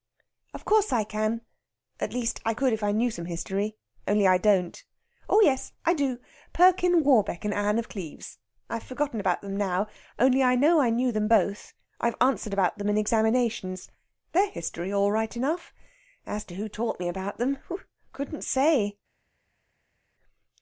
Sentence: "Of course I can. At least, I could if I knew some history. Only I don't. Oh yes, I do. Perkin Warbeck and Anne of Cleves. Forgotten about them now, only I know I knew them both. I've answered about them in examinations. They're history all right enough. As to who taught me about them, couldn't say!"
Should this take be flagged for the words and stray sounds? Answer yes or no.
yes